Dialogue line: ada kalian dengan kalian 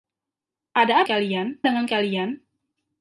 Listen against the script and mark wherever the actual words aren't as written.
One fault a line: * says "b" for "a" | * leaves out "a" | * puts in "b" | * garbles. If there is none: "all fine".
all fine